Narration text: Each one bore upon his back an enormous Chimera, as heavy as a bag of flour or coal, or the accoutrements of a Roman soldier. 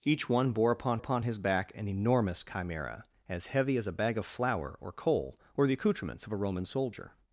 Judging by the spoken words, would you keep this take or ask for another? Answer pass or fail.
fail